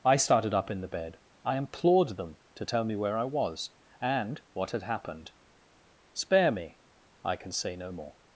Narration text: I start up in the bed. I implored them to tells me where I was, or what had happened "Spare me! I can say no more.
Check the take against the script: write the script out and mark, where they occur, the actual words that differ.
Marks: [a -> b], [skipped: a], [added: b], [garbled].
I [start -> started] up in the bed. I implored them to [tells -> tell] me where I was, [or -> and] what had happened "Spare me! I can say no more.